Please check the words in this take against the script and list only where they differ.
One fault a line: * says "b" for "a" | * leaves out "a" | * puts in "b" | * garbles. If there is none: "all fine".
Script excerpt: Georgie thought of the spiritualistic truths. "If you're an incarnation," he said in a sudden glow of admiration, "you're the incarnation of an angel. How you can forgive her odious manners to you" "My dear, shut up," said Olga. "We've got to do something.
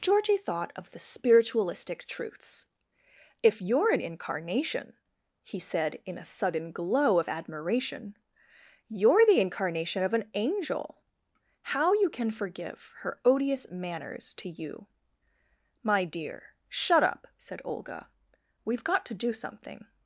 all fine